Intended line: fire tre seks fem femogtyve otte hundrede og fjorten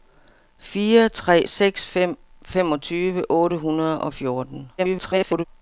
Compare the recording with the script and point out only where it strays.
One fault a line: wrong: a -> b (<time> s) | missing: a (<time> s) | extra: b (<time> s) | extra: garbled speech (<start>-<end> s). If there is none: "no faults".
extra: garbled speech (4.8-5.4 s)